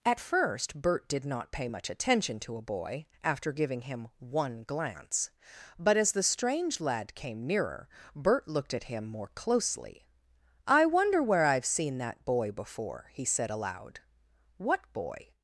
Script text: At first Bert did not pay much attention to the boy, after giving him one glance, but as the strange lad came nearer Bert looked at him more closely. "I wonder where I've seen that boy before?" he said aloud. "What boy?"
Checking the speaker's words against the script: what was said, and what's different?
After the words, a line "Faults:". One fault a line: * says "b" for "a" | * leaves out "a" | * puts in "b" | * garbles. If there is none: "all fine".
At first Bert did not pay much attention to a boy, after giving him one glance, but as the strange lad came nearer Bert looked at him more closely. "I wonder where I've seen that boy before?" he said aloud. "What boy?"
Faults:
* says "a" for "the"